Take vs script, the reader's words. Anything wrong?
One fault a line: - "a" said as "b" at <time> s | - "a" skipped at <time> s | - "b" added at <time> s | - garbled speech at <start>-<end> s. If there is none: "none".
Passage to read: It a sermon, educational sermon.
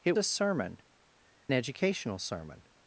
none